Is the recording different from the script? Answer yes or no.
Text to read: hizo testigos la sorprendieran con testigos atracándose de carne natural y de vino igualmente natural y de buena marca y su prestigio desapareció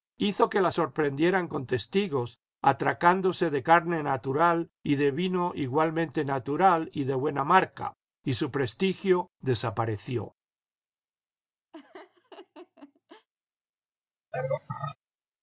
yes